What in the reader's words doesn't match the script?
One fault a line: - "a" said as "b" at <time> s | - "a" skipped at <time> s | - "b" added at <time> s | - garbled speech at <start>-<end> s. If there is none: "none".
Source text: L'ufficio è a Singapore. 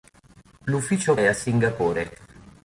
none